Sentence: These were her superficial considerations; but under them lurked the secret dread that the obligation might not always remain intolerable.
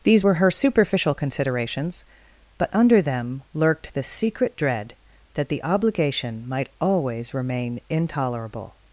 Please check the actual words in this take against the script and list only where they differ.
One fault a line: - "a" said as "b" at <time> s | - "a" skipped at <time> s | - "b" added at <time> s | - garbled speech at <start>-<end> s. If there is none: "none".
- "not" skipped at 6.7 s